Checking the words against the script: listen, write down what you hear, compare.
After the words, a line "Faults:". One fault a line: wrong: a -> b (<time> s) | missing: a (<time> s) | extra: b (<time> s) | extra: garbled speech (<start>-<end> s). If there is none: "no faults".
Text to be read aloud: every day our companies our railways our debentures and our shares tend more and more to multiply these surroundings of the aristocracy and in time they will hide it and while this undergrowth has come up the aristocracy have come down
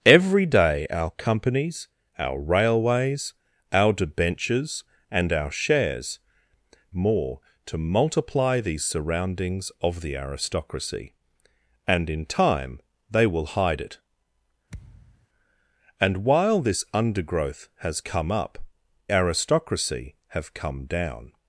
every day our companies our railways our debentures and our shares more to multiply these surroundings of the aristocracy and in time they will hide it and while this undergrowth has come up aristocracy have come down
Faults:
missing: tend (6.2 s)
missing: and more (7.4 s)
missing: the (18.6 s)